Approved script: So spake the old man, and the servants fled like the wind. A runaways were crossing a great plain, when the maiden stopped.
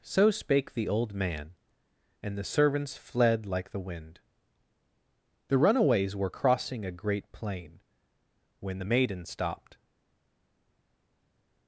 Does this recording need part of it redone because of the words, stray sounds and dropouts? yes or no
yes